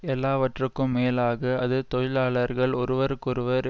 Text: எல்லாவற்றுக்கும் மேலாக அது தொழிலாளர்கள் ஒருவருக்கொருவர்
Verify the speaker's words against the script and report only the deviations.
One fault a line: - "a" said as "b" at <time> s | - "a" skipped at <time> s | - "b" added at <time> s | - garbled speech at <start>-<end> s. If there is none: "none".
none